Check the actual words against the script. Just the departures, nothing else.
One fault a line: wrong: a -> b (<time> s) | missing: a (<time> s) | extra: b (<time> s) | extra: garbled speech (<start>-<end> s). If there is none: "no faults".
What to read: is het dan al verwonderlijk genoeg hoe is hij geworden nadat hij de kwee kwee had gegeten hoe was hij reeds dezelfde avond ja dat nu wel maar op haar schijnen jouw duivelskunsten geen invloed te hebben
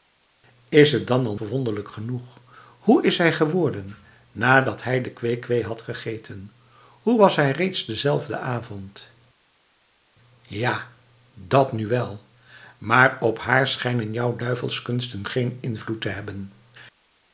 no faults